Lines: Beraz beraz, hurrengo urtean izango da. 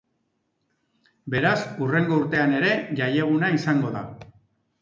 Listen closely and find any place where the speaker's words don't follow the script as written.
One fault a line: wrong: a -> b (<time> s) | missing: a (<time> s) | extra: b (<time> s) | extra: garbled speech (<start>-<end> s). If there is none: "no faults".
missing: beraz (1.6 s)
extra: ere jaieguna (2.6 s)